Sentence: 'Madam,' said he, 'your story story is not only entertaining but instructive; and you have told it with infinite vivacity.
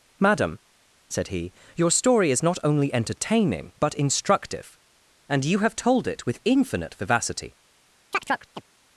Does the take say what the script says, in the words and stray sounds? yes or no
no